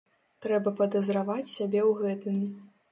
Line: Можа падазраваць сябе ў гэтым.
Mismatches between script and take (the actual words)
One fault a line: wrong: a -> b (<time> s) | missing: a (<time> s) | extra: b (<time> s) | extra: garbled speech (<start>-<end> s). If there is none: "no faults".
wrong: Можа -> Трэба (0.5 s)